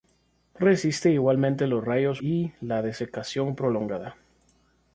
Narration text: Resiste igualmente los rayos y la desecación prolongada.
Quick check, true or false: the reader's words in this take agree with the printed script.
true